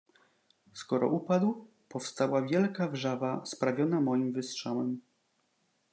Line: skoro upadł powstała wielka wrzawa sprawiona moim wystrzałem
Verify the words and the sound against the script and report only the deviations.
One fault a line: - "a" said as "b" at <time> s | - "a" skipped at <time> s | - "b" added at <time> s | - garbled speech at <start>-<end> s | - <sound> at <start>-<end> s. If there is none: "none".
none